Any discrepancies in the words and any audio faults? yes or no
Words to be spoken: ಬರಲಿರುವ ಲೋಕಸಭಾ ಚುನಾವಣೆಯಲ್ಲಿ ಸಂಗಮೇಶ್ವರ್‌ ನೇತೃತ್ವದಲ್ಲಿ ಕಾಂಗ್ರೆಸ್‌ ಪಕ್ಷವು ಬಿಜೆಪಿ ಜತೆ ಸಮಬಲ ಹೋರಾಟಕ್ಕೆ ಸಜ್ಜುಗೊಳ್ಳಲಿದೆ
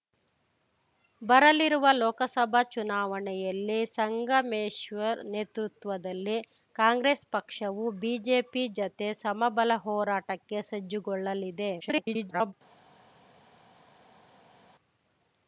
yes